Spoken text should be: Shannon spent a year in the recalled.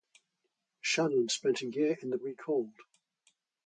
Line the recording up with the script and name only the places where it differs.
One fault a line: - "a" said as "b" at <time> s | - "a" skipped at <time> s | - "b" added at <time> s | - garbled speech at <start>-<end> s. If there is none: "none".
none